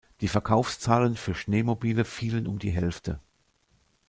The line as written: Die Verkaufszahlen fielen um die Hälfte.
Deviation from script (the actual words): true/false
true